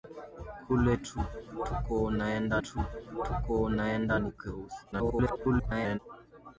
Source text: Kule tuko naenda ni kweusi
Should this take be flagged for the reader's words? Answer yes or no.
yes